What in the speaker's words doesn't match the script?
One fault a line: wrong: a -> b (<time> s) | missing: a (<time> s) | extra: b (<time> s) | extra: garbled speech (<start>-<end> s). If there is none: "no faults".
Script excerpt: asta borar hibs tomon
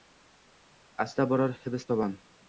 no faults